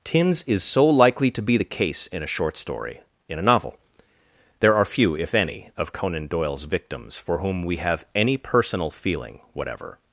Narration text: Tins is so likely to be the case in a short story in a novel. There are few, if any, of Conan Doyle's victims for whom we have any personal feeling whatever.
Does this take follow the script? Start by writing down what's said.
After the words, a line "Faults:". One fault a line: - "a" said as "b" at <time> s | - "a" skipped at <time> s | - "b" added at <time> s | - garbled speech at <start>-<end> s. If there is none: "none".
Tins is so likely to be the case in a short story in a novel. There are few, if any, of Conan Doyle's victims for whom we have any personal feeling whatever.
Faults:
none